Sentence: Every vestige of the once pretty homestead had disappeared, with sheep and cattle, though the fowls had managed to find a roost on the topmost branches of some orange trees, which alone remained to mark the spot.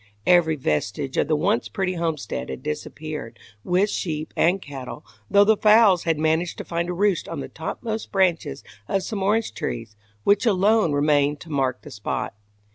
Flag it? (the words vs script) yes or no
no